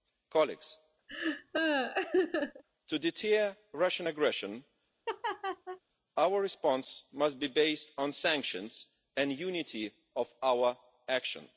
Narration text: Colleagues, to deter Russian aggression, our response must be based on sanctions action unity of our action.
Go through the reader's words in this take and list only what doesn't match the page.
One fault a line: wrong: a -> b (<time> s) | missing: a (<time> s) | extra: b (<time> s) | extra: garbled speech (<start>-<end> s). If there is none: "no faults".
wrong: action -> and (9.2 s)